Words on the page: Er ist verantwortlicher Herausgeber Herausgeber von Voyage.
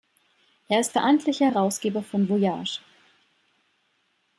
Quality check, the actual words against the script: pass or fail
fail